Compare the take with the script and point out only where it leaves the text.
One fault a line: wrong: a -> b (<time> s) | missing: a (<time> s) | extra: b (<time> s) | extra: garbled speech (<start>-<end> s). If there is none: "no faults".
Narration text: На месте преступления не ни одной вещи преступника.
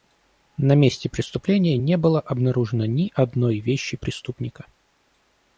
extra: было обнаружено (2.0 s)